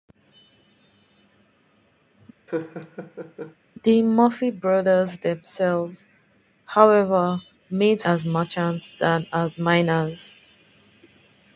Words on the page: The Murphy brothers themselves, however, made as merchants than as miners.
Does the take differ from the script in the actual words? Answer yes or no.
no